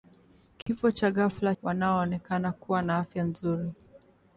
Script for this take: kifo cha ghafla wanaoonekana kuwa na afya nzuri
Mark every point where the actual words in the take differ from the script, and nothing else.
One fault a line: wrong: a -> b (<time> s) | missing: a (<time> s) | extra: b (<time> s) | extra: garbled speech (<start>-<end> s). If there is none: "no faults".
no faults